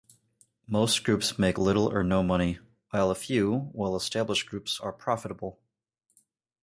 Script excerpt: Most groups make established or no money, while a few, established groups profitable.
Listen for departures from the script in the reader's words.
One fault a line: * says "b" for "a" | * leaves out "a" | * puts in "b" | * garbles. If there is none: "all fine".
* says "little" for "established"
* puts in "well"
* puts in "are"